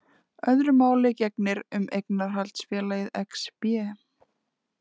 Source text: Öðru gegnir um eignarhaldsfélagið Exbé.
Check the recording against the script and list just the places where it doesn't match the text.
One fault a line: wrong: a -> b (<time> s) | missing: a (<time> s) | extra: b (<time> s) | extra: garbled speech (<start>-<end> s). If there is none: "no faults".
extra: máli (0.8 s)